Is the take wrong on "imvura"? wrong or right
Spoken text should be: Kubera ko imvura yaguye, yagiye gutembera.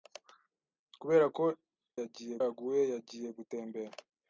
wrong